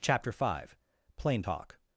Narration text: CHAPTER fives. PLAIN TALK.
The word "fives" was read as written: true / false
false